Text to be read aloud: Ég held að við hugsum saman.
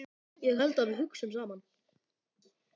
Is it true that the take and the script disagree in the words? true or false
false